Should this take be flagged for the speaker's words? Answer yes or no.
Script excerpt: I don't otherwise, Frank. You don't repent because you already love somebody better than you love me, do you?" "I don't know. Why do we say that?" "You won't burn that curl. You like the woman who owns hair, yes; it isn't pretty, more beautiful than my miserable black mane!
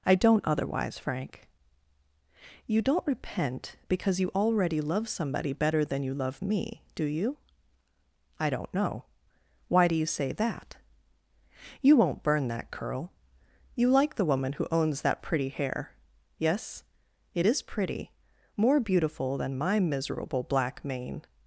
yes